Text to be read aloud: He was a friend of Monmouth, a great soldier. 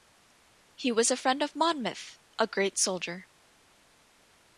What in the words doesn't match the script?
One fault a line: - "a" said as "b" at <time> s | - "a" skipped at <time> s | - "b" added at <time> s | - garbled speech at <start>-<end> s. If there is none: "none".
none